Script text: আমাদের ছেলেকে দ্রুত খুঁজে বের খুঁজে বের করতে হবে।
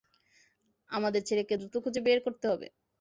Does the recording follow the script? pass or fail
fail